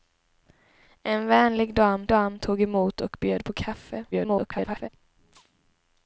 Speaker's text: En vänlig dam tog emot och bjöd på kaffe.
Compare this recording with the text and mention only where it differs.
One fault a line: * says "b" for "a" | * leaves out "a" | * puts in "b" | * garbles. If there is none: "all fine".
* puts in "dam"
* garbles